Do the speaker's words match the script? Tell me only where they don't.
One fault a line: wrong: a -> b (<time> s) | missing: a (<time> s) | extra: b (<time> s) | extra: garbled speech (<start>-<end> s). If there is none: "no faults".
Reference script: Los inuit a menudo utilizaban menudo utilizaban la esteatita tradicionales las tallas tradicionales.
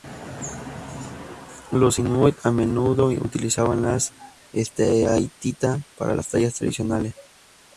missing: menudo utilizaban (3.8 s)
wrong: tradicionales -> para (6.0 s)